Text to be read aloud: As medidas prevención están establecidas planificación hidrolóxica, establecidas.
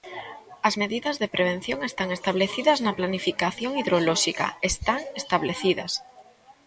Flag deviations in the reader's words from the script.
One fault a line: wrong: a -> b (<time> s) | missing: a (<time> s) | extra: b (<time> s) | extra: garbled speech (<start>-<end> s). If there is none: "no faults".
extra: de (1.2 s)
extra: na (2.8 s)
extra: están (4.7 s)